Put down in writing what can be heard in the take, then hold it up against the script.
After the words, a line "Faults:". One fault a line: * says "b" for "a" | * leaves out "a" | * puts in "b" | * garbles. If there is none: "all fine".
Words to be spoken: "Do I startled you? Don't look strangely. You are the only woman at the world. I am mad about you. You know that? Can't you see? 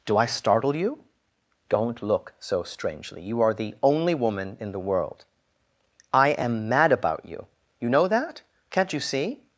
"Do I startle you? Don't look so strangely. You are the only woman in the world. I am mad about you. You know that? Can't you see?
Faults:
* says "startle" for "startled"
* puts in "so"
* says "in" for "at"